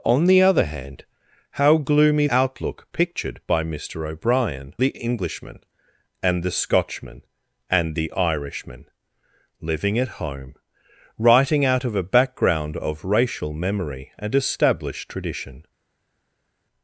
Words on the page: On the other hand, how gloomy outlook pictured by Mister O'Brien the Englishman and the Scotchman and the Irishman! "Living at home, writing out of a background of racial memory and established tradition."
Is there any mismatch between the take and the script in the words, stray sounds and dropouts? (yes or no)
no